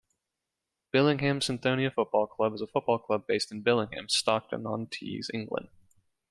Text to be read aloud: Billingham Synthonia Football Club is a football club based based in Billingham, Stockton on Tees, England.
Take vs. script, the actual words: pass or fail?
fail